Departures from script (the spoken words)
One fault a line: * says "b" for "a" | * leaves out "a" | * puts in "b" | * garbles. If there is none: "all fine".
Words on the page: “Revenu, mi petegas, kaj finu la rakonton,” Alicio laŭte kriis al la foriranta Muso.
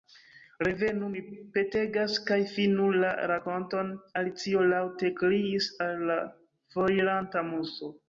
all fine